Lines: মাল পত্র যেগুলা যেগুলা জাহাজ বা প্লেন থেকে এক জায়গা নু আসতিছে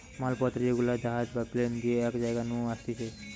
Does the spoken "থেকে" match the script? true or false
false